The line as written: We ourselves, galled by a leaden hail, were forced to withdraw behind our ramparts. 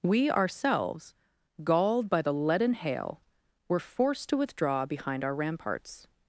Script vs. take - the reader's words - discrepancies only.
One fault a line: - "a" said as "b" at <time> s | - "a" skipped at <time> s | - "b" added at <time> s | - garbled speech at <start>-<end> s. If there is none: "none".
- "a" said as "the" at 2.2 s